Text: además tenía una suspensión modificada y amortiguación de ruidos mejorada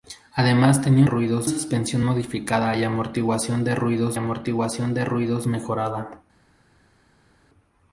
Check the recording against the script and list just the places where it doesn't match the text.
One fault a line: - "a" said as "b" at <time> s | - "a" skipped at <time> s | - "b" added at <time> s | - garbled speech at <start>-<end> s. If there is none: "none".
- "una" said as "ruidos" at 1.0 s
- "amortiguación de ruidos" added at 4.1 s